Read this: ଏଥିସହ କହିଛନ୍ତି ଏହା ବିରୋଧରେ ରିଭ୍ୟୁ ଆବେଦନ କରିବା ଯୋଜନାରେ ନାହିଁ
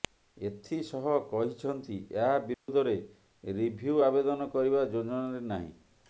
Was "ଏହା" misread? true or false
false